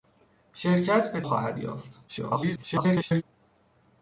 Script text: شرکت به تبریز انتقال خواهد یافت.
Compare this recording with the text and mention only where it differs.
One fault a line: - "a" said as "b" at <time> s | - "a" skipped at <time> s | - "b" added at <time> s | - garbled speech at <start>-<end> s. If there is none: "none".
- "تبریز انتقال" skipped at 1.2 s
- garbled speech at 2.1-3.2 s